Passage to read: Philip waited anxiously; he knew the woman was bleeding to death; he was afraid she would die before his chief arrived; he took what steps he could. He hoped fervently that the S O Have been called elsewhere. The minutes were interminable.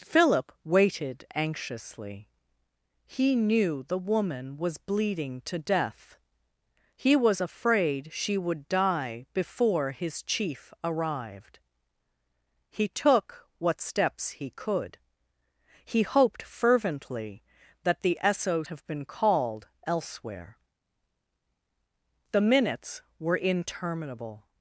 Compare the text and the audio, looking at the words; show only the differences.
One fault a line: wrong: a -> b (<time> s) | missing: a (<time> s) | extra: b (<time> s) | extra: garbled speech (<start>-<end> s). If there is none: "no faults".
no faults